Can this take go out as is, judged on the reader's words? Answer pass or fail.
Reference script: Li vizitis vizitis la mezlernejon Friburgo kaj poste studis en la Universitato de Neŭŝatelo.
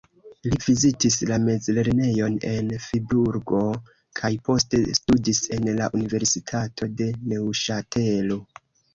fail